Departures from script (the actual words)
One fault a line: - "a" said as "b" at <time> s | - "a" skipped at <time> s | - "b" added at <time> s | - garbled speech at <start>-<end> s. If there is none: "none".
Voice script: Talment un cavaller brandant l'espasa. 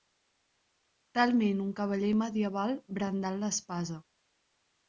- "medieval" added at 2.2 s